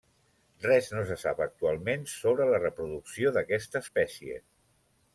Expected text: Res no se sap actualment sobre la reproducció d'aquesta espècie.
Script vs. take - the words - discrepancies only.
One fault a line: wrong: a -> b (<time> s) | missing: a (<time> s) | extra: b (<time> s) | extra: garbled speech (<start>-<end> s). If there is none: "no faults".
no faults